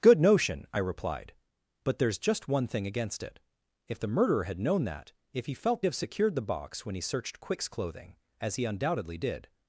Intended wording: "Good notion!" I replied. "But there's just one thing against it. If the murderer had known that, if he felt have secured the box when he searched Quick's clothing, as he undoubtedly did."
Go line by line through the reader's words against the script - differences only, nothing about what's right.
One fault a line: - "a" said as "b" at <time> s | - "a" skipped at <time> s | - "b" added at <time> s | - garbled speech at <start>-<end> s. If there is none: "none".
none